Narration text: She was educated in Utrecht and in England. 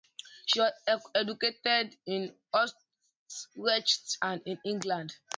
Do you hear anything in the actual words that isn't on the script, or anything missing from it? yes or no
no